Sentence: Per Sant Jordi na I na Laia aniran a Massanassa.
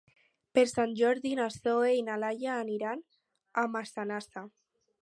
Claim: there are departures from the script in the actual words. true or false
true